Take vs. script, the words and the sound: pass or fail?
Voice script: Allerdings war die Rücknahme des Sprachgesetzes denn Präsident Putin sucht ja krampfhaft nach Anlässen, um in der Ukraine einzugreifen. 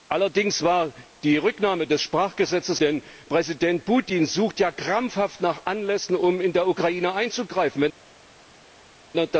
pass